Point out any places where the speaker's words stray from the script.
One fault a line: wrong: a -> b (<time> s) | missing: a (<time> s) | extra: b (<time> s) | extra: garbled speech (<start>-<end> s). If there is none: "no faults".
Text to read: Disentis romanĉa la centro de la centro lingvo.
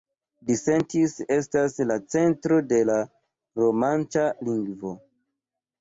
wrong: romanĉa -> estas (1.4 s)
wrong: centro -> romanĉa (3.6 s)